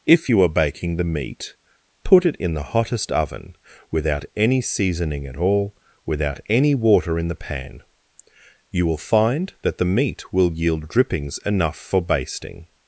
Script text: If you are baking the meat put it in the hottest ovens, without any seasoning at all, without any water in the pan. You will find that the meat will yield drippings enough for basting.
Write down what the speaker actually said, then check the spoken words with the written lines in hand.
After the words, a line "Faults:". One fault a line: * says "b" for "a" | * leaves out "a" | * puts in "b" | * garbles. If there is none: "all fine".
If you are baking the meat put it in the hottest oven, without any seasoning at all, without any water in the pan. You will find that the meat will yield drippings enough for basting.
Faults:
* says "oven" for "ovens"